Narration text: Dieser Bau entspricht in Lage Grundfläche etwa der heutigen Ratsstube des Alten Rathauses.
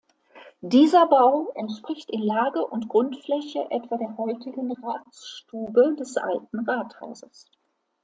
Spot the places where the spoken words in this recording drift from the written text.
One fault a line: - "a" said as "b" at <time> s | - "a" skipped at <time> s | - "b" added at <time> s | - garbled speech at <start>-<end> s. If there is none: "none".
- "und" added at 2.6 s